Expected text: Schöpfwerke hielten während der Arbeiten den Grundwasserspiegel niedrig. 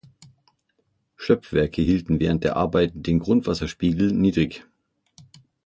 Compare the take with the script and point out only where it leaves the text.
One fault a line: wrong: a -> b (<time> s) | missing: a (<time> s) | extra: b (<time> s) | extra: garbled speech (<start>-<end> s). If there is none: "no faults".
no faults